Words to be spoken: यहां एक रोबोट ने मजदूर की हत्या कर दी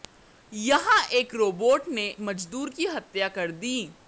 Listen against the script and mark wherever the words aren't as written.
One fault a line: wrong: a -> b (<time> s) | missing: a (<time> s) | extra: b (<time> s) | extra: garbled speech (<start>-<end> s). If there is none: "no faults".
no faults